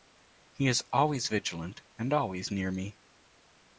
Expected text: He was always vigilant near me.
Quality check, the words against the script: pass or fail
fail